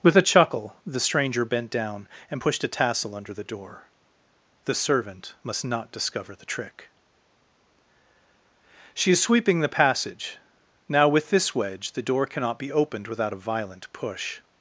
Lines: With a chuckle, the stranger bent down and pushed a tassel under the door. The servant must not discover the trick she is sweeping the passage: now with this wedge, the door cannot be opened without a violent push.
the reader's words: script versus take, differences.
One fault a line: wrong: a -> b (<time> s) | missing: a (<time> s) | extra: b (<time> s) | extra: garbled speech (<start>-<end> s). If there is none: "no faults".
no faults